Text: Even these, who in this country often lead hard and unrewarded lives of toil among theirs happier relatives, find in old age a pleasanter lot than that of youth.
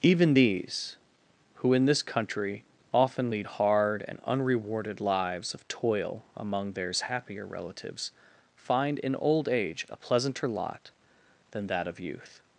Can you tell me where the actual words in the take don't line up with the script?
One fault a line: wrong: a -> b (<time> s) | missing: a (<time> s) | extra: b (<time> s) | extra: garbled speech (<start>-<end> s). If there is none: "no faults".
no faults